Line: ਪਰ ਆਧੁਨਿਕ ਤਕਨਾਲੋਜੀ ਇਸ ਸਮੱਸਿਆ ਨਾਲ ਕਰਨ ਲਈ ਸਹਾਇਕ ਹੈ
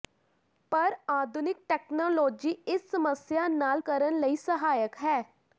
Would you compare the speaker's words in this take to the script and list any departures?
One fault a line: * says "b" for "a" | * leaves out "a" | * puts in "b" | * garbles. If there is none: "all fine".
all fine